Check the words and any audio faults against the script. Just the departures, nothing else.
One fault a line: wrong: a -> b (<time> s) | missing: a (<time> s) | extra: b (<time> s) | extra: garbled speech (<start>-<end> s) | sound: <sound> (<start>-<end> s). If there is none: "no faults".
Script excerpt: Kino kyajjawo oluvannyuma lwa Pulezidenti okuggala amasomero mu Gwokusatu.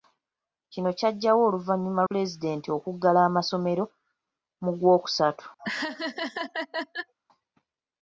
missing: lwa (2.0 s)
sound: laugh (5.6-7.1 s)